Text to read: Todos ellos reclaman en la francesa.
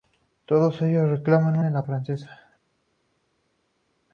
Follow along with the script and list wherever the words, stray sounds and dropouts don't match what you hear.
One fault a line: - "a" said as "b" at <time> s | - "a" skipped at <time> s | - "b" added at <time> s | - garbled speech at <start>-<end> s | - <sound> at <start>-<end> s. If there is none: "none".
none